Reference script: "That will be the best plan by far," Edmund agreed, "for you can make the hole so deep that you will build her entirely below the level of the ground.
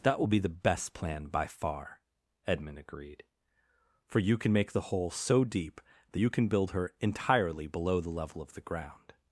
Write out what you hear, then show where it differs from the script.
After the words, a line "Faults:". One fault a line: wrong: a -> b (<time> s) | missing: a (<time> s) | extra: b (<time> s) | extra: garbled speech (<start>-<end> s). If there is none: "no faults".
"That will be the best plan by far," Edmund agreed, "for you can make the hole so deep that you can build her entirely below the level of the ground.
Faults:
wrong: will -> can (6.3 s)